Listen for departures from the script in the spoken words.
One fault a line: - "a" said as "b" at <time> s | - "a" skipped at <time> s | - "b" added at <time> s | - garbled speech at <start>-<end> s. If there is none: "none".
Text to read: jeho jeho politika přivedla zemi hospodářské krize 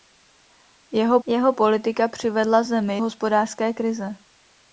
none